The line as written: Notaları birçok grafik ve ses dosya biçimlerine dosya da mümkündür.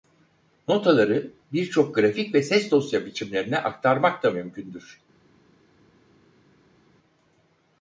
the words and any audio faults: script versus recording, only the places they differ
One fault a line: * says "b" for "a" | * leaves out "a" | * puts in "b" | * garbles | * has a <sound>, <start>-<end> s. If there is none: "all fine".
* says "aktarmak" for "dosya"